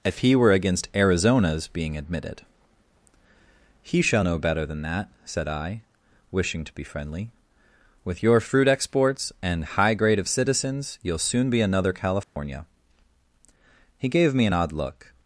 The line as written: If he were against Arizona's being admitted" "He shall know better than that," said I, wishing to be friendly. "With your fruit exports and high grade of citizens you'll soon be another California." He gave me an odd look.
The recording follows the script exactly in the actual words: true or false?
true